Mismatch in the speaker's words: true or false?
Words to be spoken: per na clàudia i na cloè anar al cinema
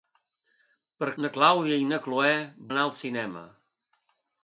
false